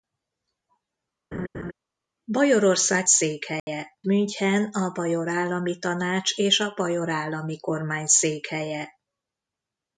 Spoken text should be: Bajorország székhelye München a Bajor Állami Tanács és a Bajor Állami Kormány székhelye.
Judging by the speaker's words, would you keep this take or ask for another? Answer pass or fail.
pass